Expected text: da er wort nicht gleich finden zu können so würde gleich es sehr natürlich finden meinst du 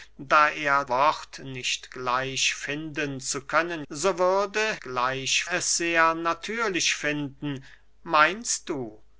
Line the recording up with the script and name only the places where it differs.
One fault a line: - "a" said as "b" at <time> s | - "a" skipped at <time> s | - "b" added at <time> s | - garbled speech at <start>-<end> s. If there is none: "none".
none